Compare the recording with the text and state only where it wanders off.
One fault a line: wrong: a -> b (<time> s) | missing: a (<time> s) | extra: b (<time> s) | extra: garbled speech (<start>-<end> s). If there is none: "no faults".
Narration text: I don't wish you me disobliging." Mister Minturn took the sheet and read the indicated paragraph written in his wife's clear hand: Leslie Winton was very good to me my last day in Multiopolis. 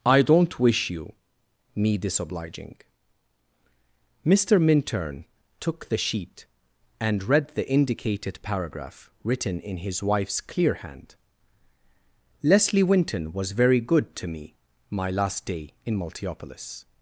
no faults